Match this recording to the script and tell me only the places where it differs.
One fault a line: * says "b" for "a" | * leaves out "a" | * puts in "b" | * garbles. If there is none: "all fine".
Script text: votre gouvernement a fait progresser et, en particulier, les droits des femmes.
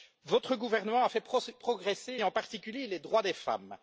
all fine